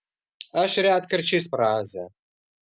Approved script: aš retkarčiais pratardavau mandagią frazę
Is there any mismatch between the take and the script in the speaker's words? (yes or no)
yes